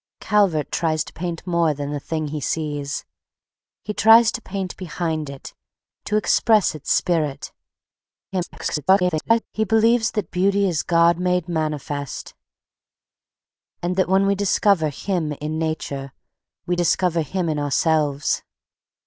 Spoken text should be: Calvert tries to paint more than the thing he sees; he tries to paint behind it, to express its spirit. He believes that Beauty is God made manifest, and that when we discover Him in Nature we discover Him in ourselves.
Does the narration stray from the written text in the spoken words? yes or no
yes